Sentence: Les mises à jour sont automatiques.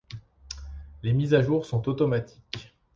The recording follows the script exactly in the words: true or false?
true